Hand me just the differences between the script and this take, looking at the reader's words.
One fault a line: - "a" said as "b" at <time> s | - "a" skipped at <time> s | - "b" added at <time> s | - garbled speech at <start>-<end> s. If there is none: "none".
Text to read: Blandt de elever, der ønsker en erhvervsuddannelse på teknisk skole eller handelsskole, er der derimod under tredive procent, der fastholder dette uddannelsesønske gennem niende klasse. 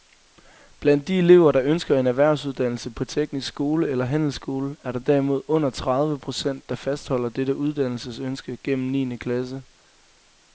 none